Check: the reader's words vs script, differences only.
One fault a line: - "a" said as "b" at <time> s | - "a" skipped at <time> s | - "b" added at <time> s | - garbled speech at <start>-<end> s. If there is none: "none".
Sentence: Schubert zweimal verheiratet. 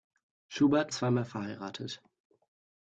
none